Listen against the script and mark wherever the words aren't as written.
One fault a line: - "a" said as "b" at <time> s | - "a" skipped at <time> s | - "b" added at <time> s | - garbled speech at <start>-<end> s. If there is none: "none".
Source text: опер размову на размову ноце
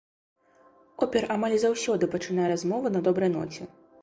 - "амаль заўсёды пачынае" added at 1.4 s
- "размову" said as "добрай" at 3.1 s